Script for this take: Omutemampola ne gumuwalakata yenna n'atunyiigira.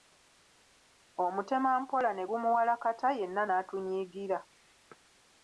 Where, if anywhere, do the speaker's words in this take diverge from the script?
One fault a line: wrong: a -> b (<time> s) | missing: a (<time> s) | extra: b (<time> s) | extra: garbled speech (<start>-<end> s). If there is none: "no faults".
no faults